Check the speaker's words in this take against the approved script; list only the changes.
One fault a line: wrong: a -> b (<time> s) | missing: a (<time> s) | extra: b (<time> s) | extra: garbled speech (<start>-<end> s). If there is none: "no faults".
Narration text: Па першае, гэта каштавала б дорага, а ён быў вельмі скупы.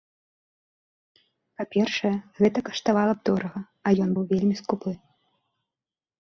no faults